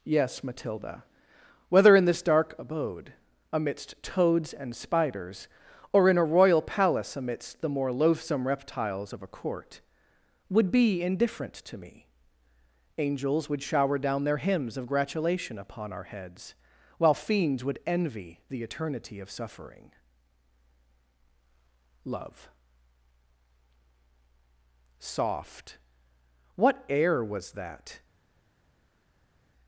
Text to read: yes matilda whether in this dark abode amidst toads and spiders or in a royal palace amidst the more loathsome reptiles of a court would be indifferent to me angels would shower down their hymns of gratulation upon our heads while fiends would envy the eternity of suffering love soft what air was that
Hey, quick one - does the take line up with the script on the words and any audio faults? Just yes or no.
yes